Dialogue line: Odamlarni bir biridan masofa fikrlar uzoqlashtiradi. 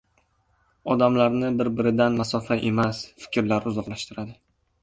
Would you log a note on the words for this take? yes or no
yes